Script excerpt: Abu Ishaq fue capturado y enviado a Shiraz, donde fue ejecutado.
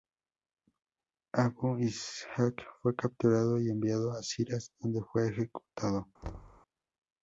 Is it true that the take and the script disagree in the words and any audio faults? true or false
true